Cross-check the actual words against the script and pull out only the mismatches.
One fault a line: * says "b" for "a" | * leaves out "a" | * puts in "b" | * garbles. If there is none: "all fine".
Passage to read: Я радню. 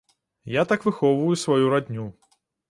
* puts in "так выхоўваю сваю"